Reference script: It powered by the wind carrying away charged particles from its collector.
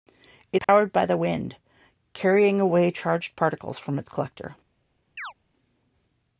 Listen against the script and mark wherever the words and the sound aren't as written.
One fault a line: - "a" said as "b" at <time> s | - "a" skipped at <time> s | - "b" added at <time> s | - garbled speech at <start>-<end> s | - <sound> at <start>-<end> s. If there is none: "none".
- dropout at 0.6-0.7 s
- chirp at 5.2-5.3 s